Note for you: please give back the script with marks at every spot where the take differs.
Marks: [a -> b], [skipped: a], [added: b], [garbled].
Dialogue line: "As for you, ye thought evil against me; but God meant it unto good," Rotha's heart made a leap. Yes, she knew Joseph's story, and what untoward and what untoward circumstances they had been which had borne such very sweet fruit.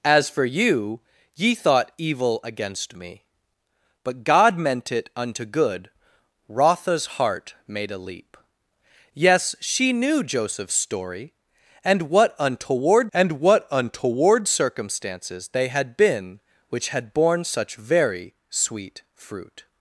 "As for you, ye thought evil against me; but God meant it unto good," Rotha's heart made a leap. Yes, she knew Joseph's story, and what untoward and what untoward circumstances they had been which had borne such very sweet fruit.